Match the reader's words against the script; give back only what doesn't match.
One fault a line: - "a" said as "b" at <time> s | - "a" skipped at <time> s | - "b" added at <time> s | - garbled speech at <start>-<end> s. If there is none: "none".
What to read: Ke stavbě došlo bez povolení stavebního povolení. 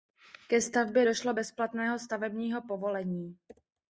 - "povolení" said as "platného" at 1.5 s